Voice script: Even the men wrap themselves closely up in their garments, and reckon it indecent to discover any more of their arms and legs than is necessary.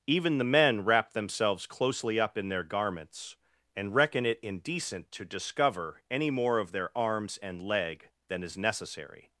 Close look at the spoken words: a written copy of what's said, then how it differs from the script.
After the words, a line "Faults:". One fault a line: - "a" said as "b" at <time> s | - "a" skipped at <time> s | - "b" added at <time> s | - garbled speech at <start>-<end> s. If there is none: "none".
Even the men wrap themselves closely up in their garments, and reckon it indecent to discover any more of their arms and leg than is necessary.
Faults:
- "legs" said as "leg" at 7.6 s